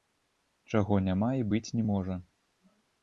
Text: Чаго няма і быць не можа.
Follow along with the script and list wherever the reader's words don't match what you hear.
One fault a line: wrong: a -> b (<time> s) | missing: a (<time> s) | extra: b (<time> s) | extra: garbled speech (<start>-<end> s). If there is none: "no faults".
no faults